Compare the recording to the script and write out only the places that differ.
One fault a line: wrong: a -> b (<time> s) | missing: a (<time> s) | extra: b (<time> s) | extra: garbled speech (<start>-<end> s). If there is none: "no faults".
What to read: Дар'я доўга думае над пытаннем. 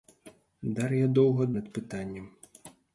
missing: думае (1.5 s)